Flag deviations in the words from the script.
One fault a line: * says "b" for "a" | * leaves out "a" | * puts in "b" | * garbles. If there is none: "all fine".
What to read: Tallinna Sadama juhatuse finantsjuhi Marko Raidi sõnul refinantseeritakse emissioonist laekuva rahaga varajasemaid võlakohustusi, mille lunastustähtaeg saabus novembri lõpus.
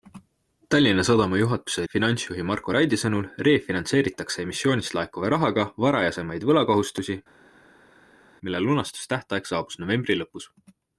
all fine